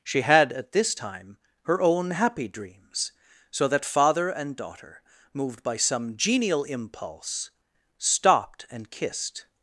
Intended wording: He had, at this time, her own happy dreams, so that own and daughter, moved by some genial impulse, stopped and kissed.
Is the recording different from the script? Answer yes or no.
yes